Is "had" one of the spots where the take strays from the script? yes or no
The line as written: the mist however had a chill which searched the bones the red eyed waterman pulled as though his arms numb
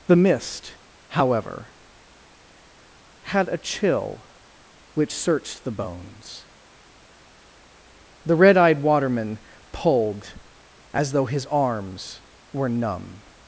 no